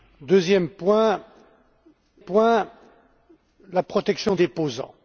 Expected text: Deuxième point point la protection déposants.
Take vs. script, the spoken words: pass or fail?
pass